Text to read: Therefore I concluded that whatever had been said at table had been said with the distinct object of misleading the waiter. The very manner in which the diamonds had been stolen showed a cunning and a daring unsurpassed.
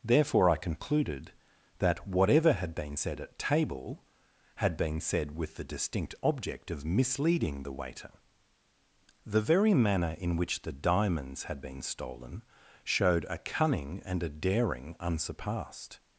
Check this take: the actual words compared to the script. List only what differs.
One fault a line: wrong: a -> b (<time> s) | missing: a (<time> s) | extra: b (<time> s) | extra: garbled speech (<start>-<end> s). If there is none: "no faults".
no faults